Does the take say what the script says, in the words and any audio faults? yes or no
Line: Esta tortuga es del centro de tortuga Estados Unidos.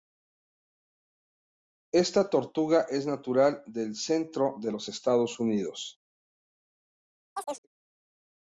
no